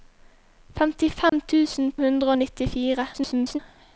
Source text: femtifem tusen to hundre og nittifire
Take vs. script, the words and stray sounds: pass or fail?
fail